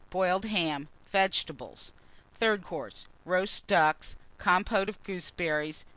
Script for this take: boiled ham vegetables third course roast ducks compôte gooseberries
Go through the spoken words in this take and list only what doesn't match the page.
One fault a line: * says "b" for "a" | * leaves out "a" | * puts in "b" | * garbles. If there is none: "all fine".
* puts in "of"